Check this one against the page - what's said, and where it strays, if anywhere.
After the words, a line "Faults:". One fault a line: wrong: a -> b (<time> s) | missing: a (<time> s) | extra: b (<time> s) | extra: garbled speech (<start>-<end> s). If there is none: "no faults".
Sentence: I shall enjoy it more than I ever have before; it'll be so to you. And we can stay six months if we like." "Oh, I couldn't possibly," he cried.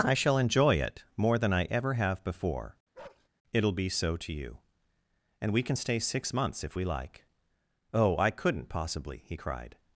I shall enjoy it more than I ever have before; it'll be so to you. And we can stay six months if we like." "Oh, I couldn't possibly," he cried.
Faults:
no faults